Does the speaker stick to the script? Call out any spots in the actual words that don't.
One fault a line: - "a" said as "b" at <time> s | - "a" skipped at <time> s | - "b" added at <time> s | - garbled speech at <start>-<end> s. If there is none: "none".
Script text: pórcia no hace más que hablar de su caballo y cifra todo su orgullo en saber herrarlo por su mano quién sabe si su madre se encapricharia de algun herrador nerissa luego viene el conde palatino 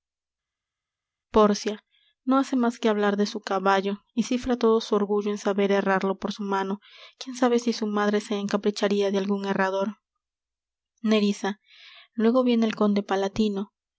none